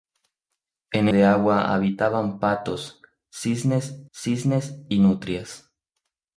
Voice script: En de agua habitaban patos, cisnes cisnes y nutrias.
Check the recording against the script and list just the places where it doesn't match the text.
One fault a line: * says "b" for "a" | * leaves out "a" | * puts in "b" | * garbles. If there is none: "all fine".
all fine